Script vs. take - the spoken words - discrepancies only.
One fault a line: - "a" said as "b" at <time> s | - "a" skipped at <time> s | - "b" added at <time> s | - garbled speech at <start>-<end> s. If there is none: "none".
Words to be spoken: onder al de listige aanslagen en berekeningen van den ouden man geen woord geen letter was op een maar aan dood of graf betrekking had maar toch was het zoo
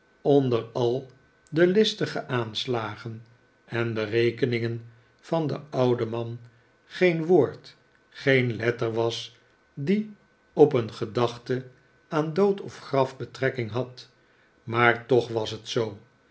- "die" added at 9.7 s
- "maar" said as "gedachte" at 10.9 s